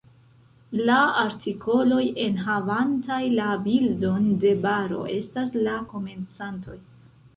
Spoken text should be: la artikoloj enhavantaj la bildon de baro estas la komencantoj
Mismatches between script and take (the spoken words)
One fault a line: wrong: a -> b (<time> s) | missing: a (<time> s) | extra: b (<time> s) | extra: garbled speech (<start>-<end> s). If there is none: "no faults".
no faults